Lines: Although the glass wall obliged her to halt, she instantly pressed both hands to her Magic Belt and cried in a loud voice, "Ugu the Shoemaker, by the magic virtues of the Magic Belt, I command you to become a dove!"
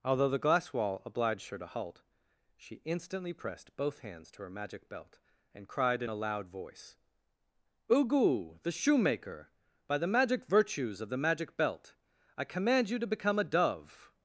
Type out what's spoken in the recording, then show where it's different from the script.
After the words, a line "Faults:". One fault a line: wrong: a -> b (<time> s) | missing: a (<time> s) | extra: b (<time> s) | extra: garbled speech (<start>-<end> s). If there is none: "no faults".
Although the glass wall obliged her to halt, she instantly pressed both hands to her Magic Belt and cried in a loud voice, "Ugu the Shoemaker, by the magic virtues of the Magic Belt, I command you to become a dove!"
Faults:
no faults